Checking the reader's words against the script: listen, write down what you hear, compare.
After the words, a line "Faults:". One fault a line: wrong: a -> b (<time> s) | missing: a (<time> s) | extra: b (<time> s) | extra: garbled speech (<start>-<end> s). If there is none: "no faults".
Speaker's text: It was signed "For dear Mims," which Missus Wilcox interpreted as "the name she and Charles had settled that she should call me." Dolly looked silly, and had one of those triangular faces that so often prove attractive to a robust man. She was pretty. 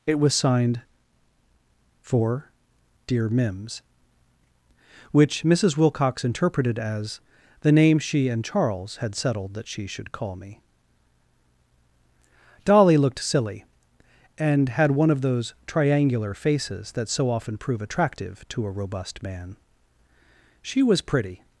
It was signed "For dear Mims," which Missus Wilcox interpreted as "the name she and Charles had settled that she should call me." Dolly looked silly, and had one of those triangular faces that so often prove attractive to a robust man. She was pretty.
Faults:
no faults